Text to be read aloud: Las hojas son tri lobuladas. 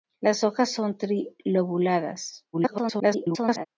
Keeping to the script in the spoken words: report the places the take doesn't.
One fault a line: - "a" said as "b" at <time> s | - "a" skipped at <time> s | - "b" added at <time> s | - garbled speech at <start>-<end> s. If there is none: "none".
- garbled speech at 2.5-3.7 s